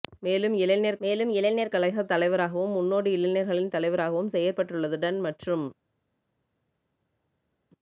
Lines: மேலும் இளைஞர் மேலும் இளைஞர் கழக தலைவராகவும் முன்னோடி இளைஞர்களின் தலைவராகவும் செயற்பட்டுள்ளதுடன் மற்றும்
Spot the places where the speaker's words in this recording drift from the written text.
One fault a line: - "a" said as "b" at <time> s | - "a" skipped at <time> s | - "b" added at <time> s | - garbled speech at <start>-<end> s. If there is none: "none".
none